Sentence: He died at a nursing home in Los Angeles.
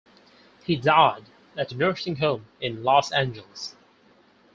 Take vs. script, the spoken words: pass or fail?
pass